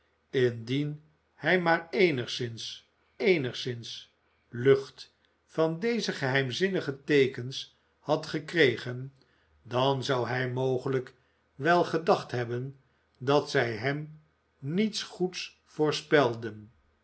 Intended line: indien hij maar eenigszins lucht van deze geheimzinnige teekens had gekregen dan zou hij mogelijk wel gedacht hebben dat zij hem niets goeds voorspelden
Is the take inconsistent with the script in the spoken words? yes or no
yes